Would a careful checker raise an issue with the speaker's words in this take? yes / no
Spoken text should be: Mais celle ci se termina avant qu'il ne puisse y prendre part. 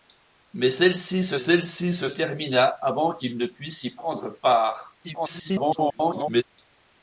yes